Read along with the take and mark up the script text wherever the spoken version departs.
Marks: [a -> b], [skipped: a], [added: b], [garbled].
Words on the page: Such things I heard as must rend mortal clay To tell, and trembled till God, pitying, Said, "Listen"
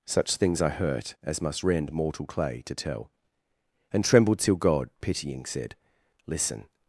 Such things I [heard -> hurt] as must rend mortal clay To tell, and trembled till God, pitying, Said, "Listen"